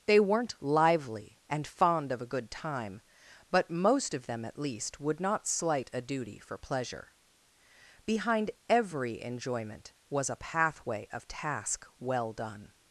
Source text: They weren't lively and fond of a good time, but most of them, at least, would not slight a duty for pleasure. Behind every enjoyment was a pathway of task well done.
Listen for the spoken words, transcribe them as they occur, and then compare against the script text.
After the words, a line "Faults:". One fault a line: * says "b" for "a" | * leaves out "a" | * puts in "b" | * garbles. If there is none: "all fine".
They weren't lively and fond of a good time, but most of them, at least, would not slight a duty for pleasure. Behind every enjoyment was a pathway of task well done.
Faults:
all fine